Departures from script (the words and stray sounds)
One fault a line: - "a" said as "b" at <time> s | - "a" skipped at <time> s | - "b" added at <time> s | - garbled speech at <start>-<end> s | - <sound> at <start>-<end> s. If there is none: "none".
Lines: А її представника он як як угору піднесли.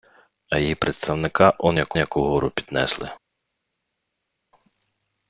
none